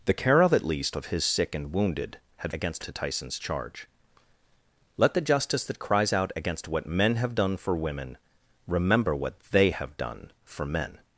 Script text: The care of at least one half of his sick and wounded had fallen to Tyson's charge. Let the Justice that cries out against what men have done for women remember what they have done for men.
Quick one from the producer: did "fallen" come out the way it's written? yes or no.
no